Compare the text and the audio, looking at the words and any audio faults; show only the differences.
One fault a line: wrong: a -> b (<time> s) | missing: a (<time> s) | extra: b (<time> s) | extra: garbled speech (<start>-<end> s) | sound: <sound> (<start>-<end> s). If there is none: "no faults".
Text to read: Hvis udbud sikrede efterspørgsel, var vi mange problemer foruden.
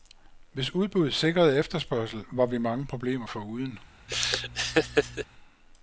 sound: laugh (4.1-5.3 s)